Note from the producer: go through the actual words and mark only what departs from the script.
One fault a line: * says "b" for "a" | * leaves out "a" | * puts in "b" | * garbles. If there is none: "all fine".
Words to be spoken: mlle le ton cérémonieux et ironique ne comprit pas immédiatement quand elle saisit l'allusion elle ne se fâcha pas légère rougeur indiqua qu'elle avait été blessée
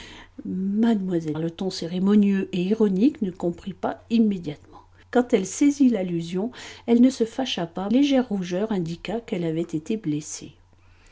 all fine